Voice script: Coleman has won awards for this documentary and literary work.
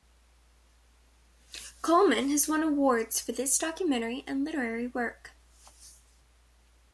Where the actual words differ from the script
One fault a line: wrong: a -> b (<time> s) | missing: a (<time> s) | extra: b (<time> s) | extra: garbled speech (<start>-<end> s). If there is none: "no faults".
no faults